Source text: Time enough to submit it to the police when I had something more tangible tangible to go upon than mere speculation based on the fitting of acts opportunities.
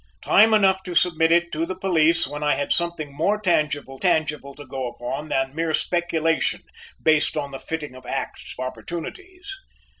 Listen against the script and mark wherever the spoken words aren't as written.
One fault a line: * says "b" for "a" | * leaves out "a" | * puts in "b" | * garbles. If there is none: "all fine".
all fine